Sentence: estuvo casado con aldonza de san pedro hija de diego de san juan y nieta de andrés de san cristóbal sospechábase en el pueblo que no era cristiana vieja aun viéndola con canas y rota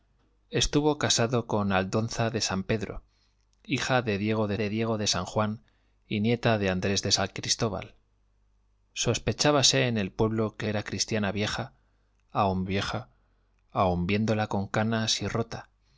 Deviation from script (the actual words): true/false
true